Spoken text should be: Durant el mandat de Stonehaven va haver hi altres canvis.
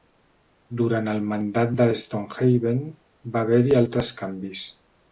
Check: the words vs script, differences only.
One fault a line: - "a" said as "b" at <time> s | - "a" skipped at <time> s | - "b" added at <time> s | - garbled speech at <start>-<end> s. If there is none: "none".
none